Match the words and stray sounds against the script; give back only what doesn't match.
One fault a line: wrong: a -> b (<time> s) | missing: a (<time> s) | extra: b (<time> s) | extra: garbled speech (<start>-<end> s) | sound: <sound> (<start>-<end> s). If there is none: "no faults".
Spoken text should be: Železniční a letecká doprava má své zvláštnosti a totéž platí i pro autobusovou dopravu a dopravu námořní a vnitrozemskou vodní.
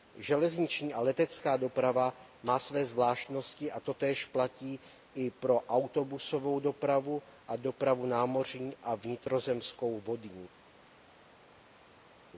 no faults